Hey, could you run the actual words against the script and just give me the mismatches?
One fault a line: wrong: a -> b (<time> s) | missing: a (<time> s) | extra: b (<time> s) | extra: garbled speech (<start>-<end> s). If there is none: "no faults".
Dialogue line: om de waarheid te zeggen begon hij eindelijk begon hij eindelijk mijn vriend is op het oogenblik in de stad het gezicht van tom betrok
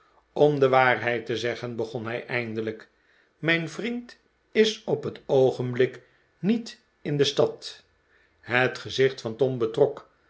missing: begon hij eindelijk (2.9 s)
extra: niet (6.4 s)